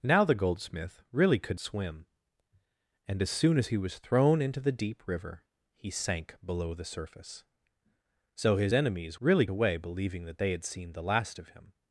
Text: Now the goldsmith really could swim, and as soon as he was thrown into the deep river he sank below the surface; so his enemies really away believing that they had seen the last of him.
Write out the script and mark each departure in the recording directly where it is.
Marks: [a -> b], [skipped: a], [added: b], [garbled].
Now the goldsmith really could swim, and as soon as he was thrown into the deep river he sank below the surface; so his enemies really away believing that they had seen the last of him.